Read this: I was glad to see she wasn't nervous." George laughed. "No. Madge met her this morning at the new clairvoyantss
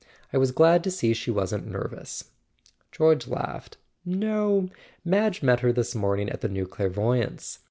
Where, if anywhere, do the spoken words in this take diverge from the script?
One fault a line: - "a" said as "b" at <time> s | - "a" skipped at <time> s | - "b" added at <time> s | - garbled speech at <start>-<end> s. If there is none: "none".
none